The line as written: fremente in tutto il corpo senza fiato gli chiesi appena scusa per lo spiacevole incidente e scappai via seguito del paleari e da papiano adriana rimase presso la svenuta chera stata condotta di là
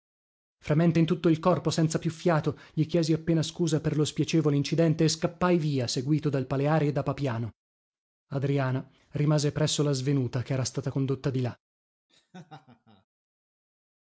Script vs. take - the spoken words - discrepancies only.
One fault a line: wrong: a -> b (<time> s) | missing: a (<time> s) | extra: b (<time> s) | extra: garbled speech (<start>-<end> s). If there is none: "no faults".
extra: più (2.0 s)
wrong: del -> dal (6.3 s)